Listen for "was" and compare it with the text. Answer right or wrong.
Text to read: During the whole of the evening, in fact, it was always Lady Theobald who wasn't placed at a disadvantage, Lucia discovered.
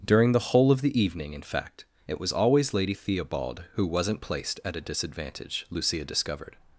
right